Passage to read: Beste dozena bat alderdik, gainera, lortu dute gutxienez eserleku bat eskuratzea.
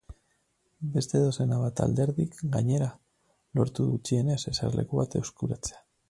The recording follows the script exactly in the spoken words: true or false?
false